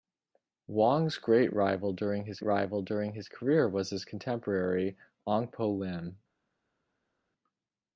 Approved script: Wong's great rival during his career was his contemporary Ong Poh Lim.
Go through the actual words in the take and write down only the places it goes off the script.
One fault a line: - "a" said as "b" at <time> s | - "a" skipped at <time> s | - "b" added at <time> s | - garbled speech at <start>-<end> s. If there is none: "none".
- "rival during his" added at 2.4 s